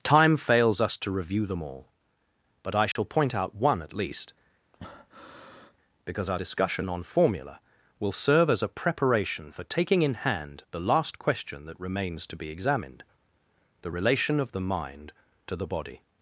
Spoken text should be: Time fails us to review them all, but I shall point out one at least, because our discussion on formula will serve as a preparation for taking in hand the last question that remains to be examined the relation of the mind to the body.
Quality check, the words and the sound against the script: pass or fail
fail